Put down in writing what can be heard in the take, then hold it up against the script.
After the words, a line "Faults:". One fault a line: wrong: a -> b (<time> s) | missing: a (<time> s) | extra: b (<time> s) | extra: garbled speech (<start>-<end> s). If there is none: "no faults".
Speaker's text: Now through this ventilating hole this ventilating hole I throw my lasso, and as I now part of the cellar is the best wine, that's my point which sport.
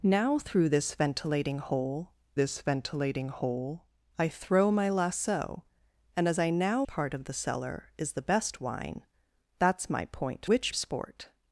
Now through this ventilating hole this ventilating hole I throw my lasso, and as I now part of the cellar is the best wine, that's my point which sport.
Faults:
no faults